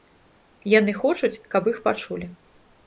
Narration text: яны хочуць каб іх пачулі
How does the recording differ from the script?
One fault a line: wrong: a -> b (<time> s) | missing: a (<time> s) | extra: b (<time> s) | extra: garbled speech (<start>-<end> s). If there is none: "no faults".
no faults